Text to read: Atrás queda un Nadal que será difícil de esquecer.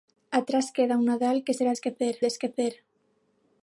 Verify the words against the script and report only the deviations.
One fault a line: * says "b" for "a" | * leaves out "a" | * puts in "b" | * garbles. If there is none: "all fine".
* says "esquecer" for "difícil"